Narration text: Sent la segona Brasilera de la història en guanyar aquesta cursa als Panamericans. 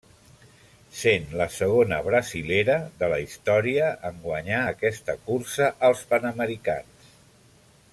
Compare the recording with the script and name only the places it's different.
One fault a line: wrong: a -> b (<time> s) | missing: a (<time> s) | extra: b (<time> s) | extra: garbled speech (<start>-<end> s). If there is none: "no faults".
no faults